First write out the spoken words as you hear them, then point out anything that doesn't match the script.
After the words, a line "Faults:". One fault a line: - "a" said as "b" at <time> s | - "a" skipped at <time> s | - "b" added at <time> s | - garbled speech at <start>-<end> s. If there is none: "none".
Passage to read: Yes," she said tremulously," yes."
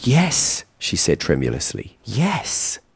Yes," she said tremulously," yes."
Faults:
none